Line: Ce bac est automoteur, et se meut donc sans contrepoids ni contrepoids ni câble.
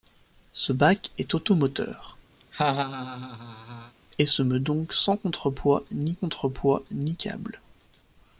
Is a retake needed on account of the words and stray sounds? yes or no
yes